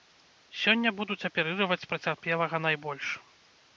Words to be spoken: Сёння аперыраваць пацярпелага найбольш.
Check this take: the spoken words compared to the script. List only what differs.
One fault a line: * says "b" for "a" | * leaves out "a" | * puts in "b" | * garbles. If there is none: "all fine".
* puts in "будуць"